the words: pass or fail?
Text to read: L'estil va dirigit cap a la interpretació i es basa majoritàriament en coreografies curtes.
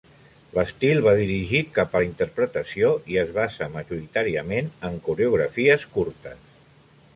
pass